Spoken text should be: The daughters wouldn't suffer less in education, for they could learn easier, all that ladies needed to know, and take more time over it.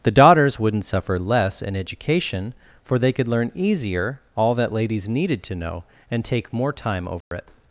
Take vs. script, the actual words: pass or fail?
pass